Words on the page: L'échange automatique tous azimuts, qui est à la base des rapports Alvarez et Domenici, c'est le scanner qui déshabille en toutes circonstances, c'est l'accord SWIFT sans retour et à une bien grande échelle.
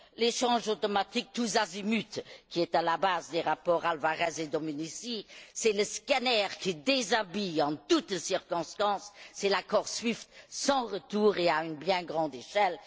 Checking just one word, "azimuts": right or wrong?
right